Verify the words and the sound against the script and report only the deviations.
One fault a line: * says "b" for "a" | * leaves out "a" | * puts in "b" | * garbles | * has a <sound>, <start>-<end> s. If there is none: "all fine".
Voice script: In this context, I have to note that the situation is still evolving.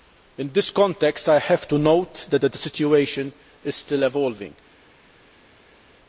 * puts in "that"